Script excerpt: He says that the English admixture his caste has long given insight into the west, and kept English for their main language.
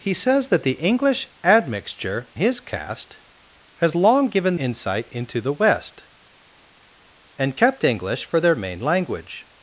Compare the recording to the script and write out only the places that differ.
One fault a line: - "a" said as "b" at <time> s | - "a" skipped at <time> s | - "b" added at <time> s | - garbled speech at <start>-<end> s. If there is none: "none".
none